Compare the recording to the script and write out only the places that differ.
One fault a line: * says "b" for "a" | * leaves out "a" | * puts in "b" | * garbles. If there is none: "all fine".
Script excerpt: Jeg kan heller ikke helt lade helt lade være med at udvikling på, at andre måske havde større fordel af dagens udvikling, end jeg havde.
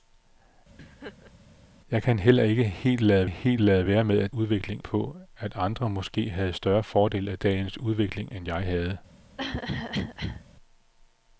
all fine